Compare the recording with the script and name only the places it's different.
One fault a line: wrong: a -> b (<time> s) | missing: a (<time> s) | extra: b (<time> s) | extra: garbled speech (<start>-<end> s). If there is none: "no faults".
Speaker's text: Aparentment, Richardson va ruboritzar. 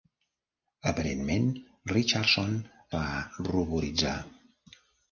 no faults